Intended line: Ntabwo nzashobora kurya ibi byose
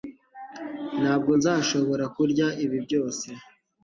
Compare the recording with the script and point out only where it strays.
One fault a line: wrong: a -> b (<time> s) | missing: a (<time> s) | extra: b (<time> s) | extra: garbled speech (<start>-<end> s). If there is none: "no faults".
no faults